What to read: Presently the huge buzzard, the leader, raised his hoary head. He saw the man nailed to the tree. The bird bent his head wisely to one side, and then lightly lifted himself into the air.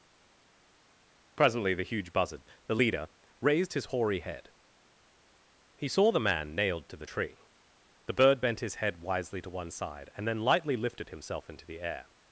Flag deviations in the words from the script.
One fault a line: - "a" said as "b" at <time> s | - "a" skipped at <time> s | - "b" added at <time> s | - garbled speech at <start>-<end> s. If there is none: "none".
none